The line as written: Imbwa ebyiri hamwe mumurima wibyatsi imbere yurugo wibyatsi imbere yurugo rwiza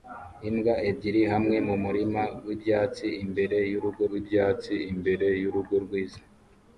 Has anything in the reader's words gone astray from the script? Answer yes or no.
no